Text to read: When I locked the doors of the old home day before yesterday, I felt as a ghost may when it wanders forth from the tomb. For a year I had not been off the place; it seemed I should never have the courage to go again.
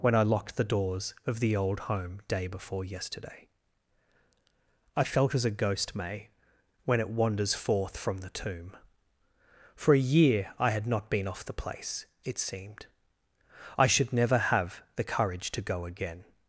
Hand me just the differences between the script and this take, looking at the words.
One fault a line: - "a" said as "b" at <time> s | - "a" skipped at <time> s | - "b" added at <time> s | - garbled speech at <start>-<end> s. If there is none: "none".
none